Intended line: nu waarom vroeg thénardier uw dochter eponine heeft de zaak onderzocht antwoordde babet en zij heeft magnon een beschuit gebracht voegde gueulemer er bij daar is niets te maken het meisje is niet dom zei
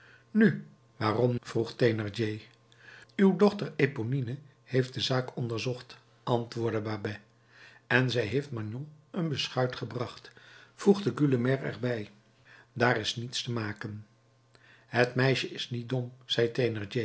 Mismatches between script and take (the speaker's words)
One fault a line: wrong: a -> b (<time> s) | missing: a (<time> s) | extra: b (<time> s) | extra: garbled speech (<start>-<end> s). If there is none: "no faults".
no faults